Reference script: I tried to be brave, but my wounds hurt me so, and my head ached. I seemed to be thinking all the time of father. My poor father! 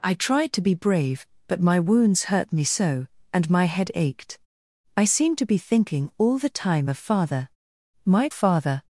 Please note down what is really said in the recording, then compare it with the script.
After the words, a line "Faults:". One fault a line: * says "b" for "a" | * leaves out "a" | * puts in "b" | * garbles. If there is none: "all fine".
I tried to be brave, but my wounds hurt me so, and my head ached. I seemed to be thinking all the time of father. My father!
Faults:
* leaves out "poor"